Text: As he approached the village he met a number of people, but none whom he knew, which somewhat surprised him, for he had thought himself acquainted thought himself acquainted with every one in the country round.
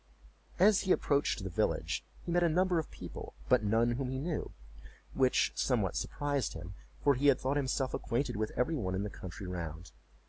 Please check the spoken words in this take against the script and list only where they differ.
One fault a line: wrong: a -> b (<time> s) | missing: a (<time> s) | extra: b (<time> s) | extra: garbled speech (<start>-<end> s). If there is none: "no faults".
missing: thought himself acquainted (8.4 s)